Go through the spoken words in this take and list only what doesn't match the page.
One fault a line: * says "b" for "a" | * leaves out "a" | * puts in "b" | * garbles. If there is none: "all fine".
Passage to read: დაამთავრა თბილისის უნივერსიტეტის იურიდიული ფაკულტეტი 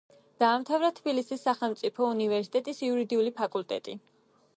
* puts in "სახელმწიფო"